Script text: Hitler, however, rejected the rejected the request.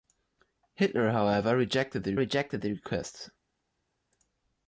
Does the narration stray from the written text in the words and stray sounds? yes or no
no